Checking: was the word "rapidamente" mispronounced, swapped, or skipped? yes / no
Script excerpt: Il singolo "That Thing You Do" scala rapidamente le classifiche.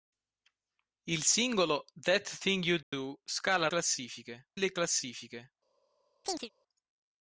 yes